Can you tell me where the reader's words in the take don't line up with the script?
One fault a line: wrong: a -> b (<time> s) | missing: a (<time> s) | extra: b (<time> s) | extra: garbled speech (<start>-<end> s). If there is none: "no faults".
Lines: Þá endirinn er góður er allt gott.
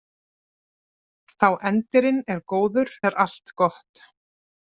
no faults